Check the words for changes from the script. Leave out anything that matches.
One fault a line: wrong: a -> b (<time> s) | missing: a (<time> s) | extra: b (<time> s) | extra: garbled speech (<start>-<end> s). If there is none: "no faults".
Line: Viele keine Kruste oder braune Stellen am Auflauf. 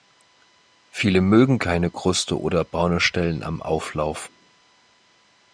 extra: mögen (1.2 s)